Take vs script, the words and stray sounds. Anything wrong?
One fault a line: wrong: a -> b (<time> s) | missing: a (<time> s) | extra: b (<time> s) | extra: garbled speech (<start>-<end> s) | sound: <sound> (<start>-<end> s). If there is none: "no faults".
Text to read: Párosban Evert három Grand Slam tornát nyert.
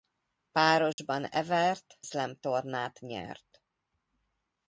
sound: dropout (0.9-1.0 s)
missing: három Grand (2.0 s)